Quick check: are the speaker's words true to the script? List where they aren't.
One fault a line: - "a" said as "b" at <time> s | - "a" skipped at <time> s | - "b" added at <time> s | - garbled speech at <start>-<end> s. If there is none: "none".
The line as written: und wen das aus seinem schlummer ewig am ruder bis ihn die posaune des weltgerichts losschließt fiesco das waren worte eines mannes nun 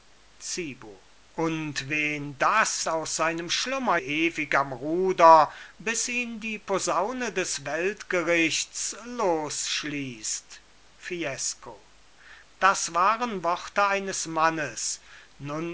none